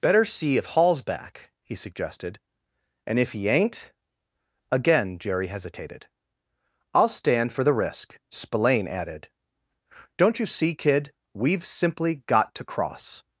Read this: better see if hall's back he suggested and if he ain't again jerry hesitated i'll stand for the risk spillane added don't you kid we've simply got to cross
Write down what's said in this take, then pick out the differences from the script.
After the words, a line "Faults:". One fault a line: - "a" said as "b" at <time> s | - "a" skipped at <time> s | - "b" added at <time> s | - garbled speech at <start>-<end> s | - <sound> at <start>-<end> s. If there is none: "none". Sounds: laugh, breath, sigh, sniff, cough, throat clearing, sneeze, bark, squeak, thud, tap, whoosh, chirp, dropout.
better see if hall's back he suggested and if he ain't again jerry hesitated i'll stand for the risk spillane added don't you see kid we've simply got to cross
Faults:
- "see" added at 10.5 s